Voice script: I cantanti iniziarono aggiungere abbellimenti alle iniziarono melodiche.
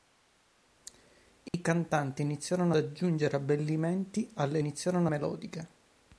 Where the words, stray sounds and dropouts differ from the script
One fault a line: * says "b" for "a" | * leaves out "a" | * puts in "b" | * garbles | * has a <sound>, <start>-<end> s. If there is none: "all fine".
* has a dropout, 1.5-1.5 s